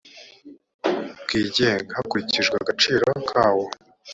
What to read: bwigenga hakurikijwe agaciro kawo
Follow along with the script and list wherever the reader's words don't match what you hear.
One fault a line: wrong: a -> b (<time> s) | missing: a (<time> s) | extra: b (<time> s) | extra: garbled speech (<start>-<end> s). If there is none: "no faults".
no faults